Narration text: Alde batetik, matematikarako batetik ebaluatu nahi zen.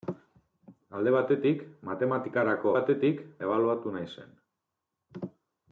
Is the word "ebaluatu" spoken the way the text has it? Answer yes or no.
yes